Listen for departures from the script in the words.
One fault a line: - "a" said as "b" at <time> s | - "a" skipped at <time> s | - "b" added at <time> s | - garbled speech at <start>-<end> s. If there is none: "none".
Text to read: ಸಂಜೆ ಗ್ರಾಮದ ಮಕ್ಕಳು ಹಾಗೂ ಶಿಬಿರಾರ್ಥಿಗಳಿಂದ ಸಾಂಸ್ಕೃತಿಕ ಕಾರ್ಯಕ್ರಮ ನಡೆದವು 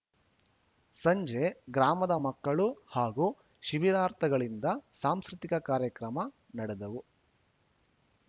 none